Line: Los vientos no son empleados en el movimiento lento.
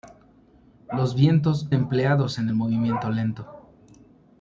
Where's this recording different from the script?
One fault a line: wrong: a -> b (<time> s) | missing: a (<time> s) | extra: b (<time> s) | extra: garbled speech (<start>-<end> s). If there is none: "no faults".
missing: no son (1.7 s)